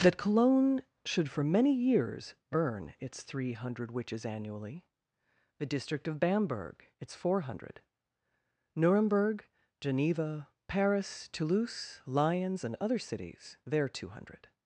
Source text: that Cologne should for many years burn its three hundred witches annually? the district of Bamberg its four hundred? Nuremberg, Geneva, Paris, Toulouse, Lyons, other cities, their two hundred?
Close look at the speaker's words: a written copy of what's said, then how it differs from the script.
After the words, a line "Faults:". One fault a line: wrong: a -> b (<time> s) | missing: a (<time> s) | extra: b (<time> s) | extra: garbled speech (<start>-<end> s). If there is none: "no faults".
that Cologne should for many years burn its three hundred witches annually? the district of Bamberg its four hundred? Nuremberg, Geneva, Paris, Toulouse, Lyons, and other cities, their two hundred?
Faults:
extra: and (12.6 s)